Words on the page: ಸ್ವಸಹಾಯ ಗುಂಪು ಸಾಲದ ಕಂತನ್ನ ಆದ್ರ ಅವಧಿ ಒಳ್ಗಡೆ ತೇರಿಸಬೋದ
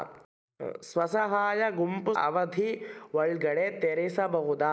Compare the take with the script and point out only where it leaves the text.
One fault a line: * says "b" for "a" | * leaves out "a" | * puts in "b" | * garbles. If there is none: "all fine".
* leaves out "ಸಾಲದ ಕಂತನ್ನ ಆದ್ರ"